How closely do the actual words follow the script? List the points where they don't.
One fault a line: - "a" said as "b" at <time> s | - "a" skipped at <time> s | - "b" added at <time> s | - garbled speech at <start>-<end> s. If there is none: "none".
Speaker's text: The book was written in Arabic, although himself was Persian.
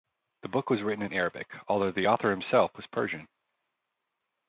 - "the author" added at 1.9 s